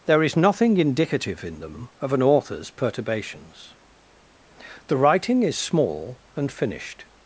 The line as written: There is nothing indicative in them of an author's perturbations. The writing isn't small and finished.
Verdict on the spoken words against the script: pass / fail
fail